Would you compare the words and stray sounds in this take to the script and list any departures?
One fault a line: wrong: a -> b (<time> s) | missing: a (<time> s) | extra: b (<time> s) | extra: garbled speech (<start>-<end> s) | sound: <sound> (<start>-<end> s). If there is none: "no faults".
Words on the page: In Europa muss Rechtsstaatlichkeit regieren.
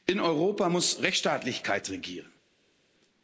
no faults